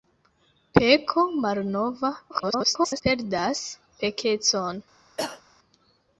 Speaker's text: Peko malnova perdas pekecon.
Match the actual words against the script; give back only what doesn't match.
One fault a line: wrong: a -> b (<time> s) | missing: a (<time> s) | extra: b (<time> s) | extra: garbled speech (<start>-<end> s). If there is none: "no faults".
extra: garbled speech (2.3-3.0 s)